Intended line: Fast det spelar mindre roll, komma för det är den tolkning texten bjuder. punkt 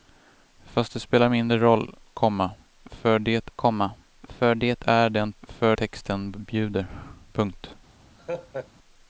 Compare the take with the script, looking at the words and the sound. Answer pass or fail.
fail